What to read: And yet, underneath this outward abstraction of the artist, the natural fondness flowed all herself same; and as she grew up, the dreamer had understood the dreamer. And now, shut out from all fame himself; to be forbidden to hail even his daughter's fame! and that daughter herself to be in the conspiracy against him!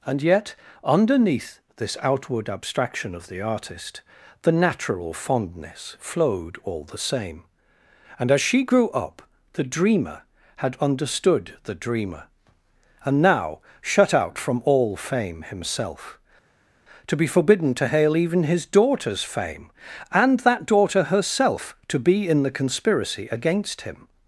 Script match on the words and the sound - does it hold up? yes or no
no